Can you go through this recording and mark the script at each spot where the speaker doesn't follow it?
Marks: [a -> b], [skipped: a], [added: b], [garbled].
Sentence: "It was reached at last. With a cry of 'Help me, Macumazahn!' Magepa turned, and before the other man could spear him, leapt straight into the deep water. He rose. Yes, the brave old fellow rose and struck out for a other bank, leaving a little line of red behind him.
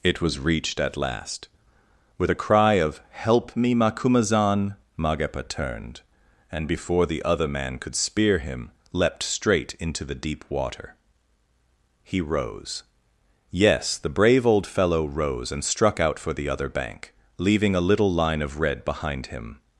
"It was reached at last. With a cry of 'Help me, Macumazahn!' Magepa turned, and before the other man could spear him, leapt straight into the deep water. He rose. Yes, the brave old fellow rose and struck out for [a -> the] other bank, leaving a little line of red behind him.